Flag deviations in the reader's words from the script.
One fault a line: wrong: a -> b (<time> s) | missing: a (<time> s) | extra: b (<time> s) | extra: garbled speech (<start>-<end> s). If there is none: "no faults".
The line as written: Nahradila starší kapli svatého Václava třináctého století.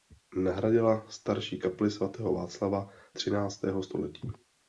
no faults